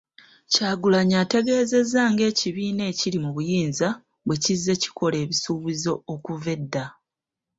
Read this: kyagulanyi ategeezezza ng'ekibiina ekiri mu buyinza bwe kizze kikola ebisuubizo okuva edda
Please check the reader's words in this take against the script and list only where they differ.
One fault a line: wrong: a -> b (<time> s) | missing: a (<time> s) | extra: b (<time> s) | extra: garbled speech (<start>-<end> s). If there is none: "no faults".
no faults